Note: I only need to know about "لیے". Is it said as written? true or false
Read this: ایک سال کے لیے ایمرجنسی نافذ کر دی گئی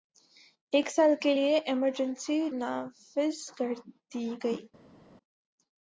true